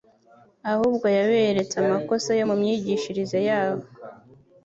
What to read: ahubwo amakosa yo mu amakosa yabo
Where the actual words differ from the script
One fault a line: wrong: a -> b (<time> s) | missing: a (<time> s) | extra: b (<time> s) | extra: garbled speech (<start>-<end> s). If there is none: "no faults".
extra: yaberetse (1.2 s)
wrong: amakosa -> myigishirize (2.6 s)